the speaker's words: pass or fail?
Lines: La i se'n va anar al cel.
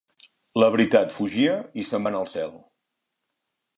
fail